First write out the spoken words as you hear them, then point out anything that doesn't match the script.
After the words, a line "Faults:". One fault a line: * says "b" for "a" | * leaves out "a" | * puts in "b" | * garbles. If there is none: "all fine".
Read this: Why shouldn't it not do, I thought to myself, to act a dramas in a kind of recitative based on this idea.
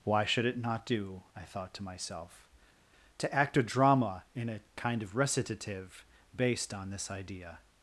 Why should it not do, I thought to myself, to act a drama in a kind of recitative based on this idea.
Faults:
* says "should" for "shouldn't"
* says "drama" for "dramas"